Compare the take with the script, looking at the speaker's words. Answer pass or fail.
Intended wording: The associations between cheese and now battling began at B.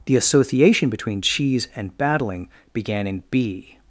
fail